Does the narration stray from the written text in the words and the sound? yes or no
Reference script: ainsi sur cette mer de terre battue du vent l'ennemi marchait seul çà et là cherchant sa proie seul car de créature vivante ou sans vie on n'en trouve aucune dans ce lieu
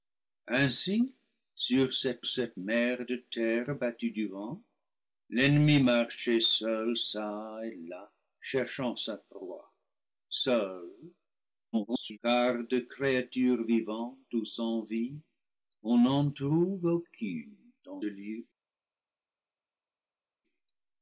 yes